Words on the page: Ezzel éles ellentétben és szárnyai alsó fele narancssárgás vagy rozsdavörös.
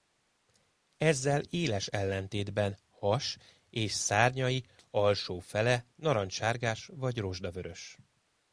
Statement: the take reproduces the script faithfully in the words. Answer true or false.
false